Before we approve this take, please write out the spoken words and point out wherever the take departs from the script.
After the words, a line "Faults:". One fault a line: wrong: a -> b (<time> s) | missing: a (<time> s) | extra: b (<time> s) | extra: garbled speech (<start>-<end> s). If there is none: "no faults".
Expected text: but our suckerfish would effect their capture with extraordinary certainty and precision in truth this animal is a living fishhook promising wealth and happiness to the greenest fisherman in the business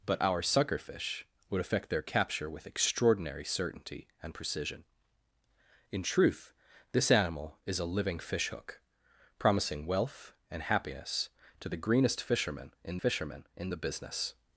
but our suckerfish would effect their capture with extraordinary certainty and precision in truth this animal is a living fishhook promising wealth and happiness to the greenest fisherman in fisherman in the business
Faults:
extra: fisherman in (13.0 s)